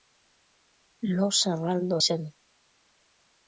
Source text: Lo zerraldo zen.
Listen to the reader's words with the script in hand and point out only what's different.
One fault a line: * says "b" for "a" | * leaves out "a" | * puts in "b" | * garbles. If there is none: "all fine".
all fine